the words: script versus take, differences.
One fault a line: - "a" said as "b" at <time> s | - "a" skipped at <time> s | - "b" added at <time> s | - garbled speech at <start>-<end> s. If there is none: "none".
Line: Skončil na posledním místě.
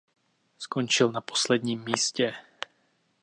none